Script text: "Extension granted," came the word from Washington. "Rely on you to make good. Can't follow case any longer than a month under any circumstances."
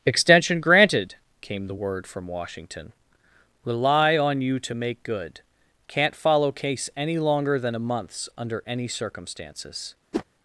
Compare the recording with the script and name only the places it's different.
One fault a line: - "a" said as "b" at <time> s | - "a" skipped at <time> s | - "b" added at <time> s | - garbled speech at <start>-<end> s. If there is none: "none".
- "month" said as "months" at 7.8 s